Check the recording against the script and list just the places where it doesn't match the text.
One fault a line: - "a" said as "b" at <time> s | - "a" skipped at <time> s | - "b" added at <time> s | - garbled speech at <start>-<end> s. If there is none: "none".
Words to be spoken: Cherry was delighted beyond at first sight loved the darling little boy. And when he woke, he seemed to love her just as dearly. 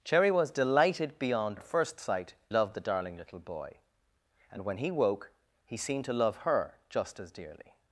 none